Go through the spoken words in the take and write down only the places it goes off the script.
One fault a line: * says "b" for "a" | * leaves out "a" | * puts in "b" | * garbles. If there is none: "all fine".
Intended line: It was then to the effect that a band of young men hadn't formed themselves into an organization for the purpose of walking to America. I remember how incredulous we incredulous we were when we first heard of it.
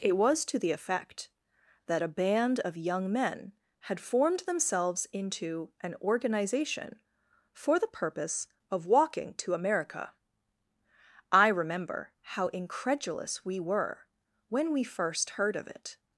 * leaves out "then"
* says "had" for "hadn't"
* leaves out "incredulous we"